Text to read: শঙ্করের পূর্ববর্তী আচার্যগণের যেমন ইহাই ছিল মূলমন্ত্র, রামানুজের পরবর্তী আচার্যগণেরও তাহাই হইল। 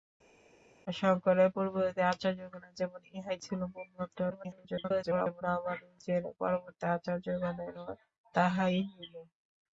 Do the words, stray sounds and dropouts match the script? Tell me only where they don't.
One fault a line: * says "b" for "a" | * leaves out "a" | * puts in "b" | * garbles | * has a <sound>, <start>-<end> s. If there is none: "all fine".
* garbles